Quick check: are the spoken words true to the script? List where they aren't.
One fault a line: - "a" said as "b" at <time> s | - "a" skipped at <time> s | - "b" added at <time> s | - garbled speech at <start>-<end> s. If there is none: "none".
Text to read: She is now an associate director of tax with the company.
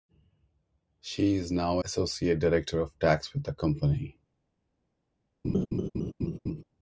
- "an" skipped at 1.8 s